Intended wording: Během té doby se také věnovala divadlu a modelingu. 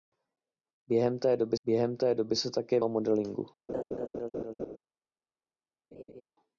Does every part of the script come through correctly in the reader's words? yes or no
no